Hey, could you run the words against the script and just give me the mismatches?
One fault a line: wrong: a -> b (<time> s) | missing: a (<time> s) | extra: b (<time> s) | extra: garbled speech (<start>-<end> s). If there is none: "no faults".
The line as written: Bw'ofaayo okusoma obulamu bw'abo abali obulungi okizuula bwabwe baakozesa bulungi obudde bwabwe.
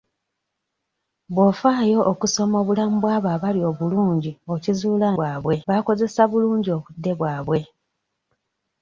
no faults